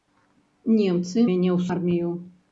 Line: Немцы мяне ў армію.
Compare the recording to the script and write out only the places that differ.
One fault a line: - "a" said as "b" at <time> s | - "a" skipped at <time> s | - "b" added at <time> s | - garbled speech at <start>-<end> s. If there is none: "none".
none